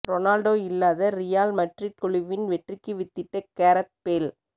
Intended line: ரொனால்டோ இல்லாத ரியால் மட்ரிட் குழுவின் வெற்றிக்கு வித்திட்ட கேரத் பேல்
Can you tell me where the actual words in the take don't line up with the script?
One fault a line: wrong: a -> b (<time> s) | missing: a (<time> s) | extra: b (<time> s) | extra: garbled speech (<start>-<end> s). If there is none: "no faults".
no faults